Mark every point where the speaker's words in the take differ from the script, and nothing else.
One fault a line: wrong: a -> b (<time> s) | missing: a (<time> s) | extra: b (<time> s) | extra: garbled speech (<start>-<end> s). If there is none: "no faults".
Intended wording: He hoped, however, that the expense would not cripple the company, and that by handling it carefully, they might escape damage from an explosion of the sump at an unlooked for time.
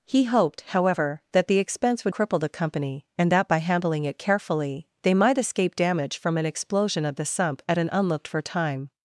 missing: not (2.1 s)